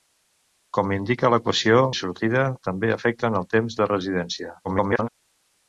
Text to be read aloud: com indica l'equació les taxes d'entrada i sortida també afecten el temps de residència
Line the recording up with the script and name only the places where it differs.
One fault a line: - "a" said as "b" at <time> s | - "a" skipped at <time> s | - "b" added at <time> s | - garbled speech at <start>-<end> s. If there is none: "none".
- "les taxes d'entrada" skipped at 1.8 s
- garbled speech at 4.6-5.1 s